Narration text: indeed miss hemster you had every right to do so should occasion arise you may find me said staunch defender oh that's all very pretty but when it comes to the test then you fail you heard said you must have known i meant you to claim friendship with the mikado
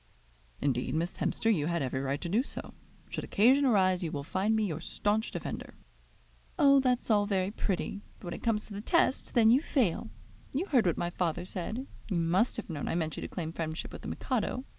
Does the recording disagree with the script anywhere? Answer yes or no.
yes